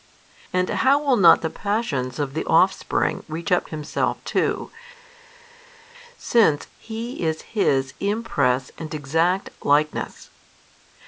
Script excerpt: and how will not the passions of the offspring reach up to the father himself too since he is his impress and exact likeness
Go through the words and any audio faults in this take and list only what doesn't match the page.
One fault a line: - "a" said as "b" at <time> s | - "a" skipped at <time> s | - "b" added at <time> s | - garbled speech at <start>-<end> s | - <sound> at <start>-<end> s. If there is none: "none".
- "to the father" skipped at 3.7 s